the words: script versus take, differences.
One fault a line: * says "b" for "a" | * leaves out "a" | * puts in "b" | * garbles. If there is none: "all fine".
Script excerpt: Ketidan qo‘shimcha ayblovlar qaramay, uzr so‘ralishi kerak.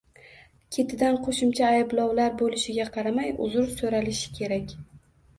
* puts in "bo‘lishiga"